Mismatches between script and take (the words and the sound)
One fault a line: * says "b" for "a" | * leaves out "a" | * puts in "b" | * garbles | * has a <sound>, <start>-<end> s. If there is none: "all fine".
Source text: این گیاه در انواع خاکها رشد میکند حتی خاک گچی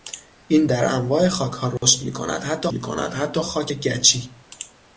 * leaves out "گیاه"
* has a dropout, 1.8-1.8 s
* puts in "میکند حتی"